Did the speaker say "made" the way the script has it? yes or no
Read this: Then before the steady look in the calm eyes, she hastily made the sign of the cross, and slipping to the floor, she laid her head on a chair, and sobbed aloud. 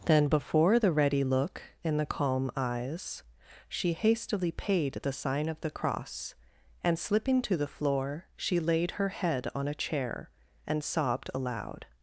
no